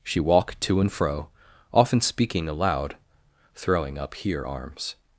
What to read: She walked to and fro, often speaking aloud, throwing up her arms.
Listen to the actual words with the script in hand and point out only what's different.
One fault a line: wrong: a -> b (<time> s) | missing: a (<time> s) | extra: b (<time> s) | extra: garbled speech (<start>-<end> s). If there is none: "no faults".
wrong: her -> here (4.1 s)